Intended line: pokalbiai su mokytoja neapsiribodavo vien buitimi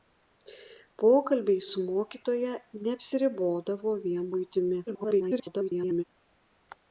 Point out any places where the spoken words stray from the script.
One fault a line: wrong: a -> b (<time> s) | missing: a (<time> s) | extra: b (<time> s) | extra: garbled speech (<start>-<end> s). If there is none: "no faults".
extra: garbled speech (4.9-6.0 s)